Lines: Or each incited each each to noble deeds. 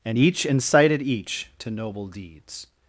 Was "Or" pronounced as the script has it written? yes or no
no